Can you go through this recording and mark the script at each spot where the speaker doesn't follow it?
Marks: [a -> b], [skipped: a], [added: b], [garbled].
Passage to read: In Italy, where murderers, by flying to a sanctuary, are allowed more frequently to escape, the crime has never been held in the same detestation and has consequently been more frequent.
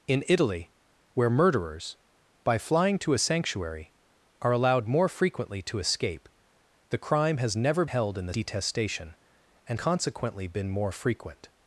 In Italy, where murderers, by flying to a sanctuary, are allowed more frequently to escape, the crime has never [skipped: been] held in the [skipped: same] detestation and [skipped: has] consequently been more frequent.